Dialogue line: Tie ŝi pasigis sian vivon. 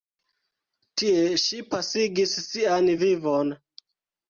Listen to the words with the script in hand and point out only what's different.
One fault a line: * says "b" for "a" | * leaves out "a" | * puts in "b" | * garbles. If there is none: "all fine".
all fine